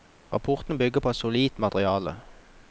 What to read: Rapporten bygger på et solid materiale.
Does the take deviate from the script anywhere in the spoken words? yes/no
no